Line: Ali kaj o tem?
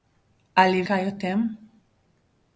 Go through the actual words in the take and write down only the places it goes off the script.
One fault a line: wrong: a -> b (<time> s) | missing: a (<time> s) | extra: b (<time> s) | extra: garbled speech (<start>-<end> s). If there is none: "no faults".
no faults